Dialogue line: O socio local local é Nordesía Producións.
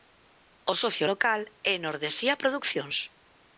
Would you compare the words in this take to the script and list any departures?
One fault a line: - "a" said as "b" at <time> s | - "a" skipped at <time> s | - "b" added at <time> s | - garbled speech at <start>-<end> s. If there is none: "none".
- "local" skipped at 1.4 s